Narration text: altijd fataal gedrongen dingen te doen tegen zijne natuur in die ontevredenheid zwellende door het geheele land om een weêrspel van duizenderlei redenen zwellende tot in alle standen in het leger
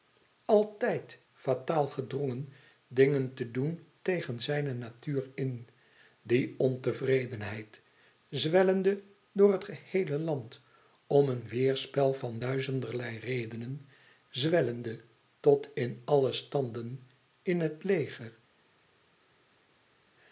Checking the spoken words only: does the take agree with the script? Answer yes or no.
yes